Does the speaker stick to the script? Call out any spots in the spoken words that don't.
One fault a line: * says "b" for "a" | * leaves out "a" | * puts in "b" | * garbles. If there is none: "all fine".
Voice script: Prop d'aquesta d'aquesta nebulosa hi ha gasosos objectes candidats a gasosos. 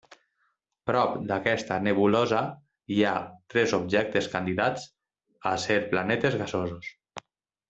* leaves out "d'aquesta"
* says "tres" for "gasosos"
* puts in "ser planetes"